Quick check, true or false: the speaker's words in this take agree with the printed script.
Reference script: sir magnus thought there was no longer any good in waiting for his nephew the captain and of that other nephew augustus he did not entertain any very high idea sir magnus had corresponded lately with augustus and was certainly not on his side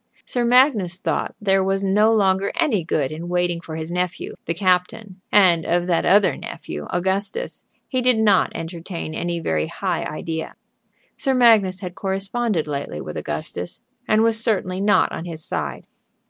true